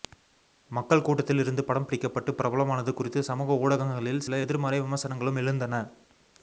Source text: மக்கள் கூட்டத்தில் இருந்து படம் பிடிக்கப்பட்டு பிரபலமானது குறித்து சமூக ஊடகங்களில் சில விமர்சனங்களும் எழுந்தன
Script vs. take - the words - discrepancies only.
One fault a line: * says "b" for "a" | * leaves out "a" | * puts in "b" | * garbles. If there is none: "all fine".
* puts in "எதிர்மறை"